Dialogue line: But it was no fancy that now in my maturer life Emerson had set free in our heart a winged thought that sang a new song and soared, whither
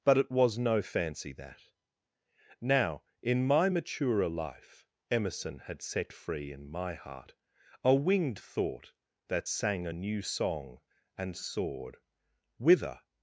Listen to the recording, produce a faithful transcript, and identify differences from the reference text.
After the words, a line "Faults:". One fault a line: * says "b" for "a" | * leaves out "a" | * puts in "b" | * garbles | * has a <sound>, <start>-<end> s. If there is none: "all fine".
But it was no fancy that now in my maturer life Emerson had set free in my heart a winged thought that sang a new song and soared, whither
Faults:
* says "my" for "our"